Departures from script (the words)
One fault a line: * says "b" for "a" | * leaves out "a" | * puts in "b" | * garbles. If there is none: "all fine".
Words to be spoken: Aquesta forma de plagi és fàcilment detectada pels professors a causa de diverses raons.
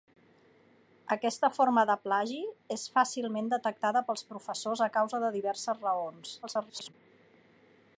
* garbles